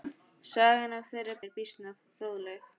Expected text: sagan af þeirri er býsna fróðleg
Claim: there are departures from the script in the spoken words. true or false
false